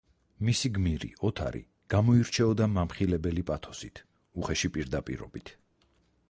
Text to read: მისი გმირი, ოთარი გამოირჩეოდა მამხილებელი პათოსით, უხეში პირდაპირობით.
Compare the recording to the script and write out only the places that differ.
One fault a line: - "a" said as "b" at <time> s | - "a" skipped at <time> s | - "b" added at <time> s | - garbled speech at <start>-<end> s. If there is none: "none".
none